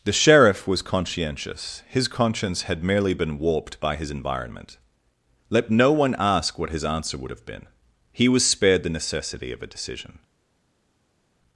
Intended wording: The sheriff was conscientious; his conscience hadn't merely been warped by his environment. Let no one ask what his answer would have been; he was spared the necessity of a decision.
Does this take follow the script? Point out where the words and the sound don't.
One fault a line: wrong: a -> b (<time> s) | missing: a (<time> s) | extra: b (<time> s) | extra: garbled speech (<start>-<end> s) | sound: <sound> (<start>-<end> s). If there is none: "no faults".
wrong: hadn't -> had (2.6 s)